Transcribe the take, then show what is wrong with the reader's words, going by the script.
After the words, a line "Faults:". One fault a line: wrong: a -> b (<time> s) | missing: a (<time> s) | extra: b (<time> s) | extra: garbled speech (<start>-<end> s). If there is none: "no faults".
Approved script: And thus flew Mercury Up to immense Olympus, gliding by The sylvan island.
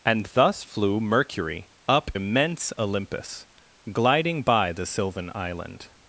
And thus flew Mercury Up immense Olympus, gliding by The sylvan island.
Faults:
missing: to (2.1 s)